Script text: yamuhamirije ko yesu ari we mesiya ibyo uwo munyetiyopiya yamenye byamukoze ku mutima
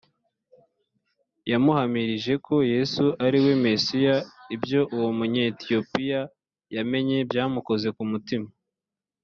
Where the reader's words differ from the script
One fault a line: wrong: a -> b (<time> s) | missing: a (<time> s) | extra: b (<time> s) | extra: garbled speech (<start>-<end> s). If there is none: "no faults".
no faults